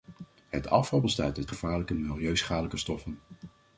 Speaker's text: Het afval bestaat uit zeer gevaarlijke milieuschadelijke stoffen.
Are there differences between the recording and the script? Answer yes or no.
yes